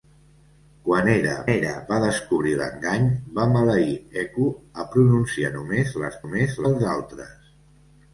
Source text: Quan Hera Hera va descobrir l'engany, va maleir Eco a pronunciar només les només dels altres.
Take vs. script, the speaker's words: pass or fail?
pass